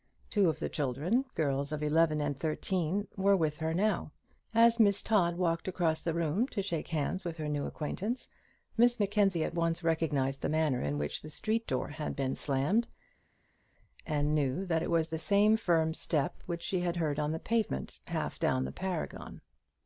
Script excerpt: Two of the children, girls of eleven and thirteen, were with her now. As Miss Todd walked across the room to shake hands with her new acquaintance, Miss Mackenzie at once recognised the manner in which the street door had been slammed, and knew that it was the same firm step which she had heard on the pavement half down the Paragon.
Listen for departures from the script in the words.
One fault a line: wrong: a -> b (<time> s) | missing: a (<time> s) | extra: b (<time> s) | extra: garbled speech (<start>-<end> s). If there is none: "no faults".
no faults